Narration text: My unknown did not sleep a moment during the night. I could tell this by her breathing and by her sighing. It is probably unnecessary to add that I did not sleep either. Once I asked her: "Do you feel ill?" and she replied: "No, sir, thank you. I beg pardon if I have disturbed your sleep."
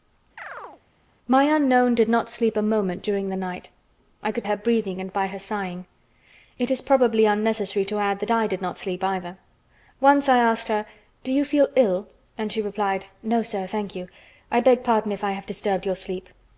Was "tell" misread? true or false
true